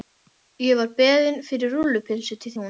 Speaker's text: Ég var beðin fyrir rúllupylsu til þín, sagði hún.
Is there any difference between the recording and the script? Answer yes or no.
yes